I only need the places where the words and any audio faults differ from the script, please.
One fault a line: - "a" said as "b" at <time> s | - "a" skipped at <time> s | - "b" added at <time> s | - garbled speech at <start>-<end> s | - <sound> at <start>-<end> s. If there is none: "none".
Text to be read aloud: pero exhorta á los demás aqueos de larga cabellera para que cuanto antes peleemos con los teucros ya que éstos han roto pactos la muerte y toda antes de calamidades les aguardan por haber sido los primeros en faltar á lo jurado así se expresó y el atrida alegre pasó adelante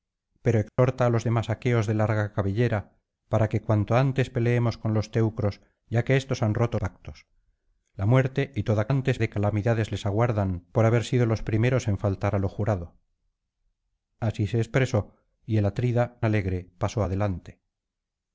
- dropout at 0.7-0.8 s